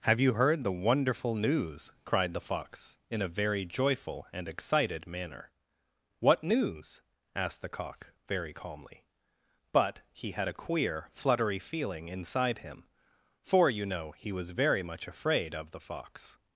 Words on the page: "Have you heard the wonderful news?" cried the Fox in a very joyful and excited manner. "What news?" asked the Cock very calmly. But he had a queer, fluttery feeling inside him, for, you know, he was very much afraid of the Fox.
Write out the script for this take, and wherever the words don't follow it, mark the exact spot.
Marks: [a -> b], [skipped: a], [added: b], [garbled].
"Have you heard the wonderful news?" cried the Fox in a very joyful and excited manner. "What news?" asked the Cock very calmly. But he had a queer, fluttery feeling inside him, for, you know, he was very much afraid of the Fox.